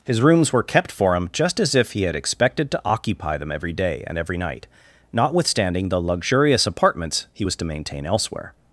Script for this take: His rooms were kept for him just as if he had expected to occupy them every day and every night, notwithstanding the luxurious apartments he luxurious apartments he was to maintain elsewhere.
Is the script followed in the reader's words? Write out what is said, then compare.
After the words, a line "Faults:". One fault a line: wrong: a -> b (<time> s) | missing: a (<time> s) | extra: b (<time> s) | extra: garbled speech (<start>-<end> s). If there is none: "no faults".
His rooms were kept for him just as if he had expected to occupy them every day and every night, notwithstanding the luxurious apartments he was to maintain elsewhere.
Faults:
missing: luxurious apartments he (7.5 s)